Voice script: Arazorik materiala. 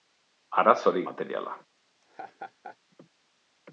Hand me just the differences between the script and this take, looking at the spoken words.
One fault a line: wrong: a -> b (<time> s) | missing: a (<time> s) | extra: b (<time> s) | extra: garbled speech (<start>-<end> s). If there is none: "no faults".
no faults